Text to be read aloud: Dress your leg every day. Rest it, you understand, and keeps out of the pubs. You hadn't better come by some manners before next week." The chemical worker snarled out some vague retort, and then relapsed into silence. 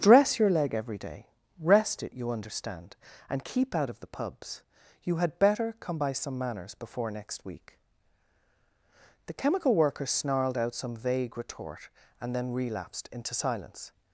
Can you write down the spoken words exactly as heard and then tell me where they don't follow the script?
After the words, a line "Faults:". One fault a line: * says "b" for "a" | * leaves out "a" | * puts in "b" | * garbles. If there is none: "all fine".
Dress your leg every day. Rest it, you understand, and keep out of the pubs. You had better come by some manners before next week." The chemical worker snarled out some vague retort, and then relapsed into silence.
Faults:
* says "keep" for "keeps"
* says "had" for "hadn't"